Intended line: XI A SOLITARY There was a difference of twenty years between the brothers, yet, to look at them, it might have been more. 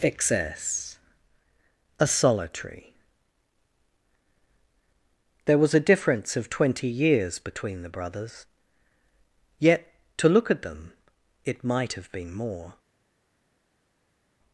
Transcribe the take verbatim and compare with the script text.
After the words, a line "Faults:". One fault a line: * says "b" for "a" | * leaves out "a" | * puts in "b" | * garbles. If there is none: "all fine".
Excess A SOLITARY There was a difference of twenty years between the brothers, yet, to look at them, it might have been more.
Faults:
* says "Excess" for "XI"